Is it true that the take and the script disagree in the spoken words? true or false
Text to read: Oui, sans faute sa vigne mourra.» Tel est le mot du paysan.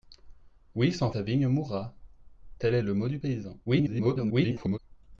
true